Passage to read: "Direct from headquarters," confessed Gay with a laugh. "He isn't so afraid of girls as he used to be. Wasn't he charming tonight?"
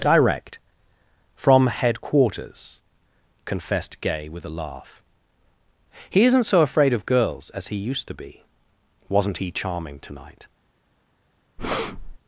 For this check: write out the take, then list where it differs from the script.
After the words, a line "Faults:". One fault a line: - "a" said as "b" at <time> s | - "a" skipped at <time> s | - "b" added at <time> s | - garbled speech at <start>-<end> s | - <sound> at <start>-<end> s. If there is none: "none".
"Direct from headquarters," confessed Gay with a laugh. "He isn't so afraid of girls as he used to be. Wasn't he charming tonight?"
Faults:
- breath at 11.6-12.2 s